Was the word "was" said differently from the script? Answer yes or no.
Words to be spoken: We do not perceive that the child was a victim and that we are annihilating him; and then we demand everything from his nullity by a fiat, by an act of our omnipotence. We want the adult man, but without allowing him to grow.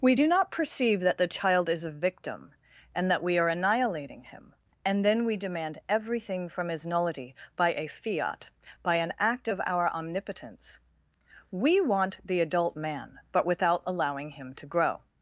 yes